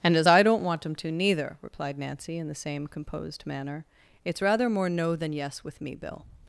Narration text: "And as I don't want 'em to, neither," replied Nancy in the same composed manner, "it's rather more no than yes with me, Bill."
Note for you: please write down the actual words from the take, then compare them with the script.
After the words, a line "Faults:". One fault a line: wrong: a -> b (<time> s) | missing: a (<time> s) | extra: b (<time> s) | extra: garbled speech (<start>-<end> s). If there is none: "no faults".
"And as I don't want 'em to, neither," replied Nancy in the same composed manner, "it's rather more no than yes with me, Bill."
Faults:
no faults